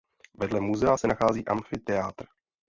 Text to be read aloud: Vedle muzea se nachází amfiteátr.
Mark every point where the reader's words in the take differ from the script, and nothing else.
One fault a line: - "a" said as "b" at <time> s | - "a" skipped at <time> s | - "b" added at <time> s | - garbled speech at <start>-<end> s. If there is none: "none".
none